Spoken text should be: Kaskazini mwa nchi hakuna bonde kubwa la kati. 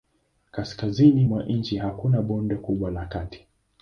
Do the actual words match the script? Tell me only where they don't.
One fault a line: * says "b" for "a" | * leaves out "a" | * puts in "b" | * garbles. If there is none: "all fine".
all fine